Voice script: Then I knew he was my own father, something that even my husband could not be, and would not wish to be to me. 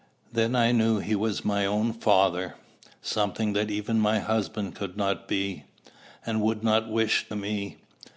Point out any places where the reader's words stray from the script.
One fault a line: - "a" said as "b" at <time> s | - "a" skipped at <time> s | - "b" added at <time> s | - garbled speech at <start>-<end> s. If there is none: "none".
- "to be to" skipped at 7.3 s